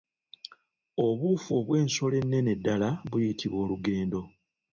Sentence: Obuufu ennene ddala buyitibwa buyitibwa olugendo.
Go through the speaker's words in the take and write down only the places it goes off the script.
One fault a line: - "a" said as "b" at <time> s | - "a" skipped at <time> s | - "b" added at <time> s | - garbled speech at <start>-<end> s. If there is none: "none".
- "obw'ensolo" added at 1.6 s
- "buyitibwa" skipped at 3.6 s